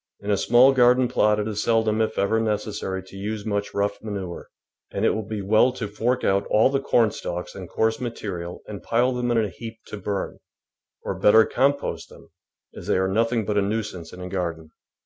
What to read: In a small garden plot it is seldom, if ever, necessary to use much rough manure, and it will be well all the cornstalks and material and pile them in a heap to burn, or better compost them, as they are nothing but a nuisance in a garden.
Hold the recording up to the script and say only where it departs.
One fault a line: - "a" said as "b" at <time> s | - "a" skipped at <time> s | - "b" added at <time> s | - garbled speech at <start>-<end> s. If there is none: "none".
- "to fork out" added at 5.7 s
- "coarse" added at 7.7 s